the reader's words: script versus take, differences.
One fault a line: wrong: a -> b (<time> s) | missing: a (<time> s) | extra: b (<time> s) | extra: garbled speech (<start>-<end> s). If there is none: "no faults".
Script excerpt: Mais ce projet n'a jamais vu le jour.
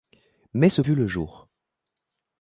missing: projet n'a jamais (0.8 s)